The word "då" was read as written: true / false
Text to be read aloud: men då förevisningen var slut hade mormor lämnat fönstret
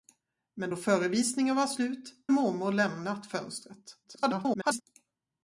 true